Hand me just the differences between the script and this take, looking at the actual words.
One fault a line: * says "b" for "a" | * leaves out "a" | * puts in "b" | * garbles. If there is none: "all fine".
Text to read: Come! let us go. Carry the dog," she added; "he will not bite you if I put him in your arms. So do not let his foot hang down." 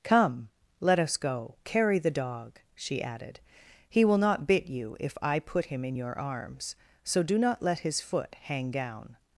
* says "bit" for "bite"